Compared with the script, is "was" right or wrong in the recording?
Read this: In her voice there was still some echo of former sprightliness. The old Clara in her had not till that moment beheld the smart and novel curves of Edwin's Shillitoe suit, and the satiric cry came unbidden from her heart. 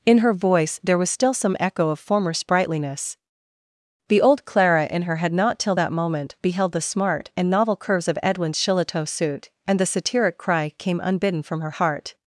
right